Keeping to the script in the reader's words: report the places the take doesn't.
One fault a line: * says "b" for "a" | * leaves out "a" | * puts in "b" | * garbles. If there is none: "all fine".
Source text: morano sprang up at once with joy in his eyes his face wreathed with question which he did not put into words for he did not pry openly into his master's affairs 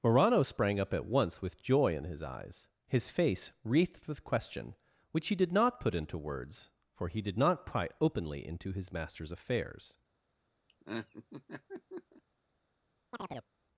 all fine